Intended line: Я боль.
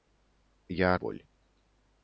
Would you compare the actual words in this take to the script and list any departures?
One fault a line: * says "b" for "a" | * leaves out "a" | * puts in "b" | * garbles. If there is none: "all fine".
all fine